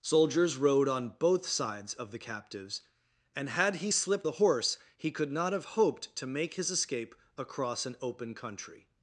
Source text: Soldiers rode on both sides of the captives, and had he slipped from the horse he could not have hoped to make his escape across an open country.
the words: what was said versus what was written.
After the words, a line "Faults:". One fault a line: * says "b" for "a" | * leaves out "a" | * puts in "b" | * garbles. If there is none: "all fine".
Soldiers rode on both sides of the captives, and had he slipped the horse he could not have hoped to make his escape across an open country.
Faults:
* leaves out "from"